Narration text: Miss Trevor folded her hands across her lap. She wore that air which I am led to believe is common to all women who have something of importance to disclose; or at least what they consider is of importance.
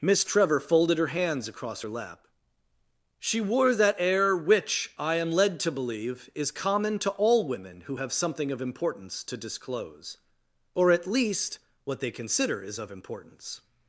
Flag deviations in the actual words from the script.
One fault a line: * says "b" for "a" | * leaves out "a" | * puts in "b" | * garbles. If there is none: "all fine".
all fine